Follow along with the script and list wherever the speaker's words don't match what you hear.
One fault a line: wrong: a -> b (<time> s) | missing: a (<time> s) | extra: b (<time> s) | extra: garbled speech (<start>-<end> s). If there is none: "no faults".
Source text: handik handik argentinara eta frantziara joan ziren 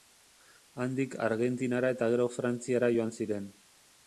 missing: handik (1.2 s)
extra: gero (2.1 s)